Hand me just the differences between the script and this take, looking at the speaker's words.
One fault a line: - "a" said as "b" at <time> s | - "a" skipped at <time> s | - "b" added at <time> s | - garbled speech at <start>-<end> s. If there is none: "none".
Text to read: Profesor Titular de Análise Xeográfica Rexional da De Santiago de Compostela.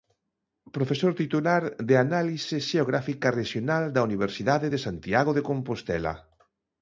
- "Universidade" added at 4.1 s